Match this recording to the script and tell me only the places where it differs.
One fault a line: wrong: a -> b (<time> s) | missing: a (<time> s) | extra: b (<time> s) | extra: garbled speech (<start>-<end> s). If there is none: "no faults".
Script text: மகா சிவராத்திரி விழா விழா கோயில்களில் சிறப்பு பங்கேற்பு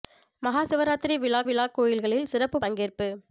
no faults